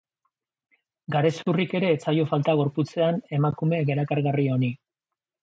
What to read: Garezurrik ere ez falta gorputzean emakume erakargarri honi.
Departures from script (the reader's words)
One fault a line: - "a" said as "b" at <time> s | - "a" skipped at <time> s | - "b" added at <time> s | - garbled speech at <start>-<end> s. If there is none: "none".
- "zaio" added at 2.1 s